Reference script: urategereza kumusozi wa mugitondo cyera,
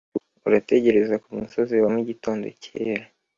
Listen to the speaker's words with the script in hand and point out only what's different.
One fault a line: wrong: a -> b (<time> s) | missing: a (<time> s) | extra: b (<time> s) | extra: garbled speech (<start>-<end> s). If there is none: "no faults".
no faults